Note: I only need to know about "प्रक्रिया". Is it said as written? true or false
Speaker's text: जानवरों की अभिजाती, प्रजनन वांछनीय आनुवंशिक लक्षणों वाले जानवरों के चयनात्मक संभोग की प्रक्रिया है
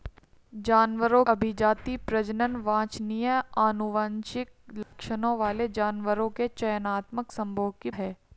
false